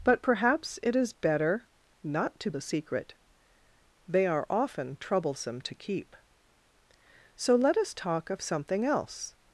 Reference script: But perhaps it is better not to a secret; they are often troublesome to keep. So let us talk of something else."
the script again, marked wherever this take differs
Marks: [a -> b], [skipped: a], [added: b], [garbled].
But perhaps it is better not to a secret; they are often troublesome to keep. So let us talk of something else."